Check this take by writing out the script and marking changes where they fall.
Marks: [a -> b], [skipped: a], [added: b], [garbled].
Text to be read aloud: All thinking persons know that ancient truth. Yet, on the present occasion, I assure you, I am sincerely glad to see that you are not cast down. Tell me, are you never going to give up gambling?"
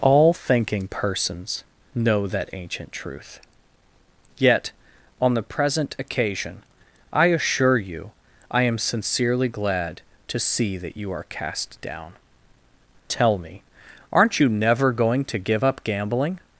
All thinking persons know that ancient truth. Yet, on the present occasion, I assure you, I am sincerely glad to see that you are [skipped: not] cast down. Tell me, [are -> aren't] you never going to give up gambling?"